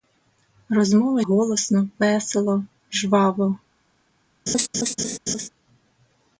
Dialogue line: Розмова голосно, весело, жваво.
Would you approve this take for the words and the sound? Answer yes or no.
no